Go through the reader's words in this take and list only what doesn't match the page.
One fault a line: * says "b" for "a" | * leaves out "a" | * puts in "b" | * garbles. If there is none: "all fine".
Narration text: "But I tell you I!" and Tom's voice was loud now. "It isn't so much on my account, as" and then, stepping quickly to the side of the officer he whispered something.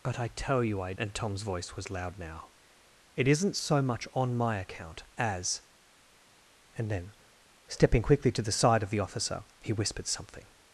all fine